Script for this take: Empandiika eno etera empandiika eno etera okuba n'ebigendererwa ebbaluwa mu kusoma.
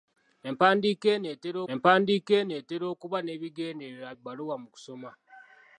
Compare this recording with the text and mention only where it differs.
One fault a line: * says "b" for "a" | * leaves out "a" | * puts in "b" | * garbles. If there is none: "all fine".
all fine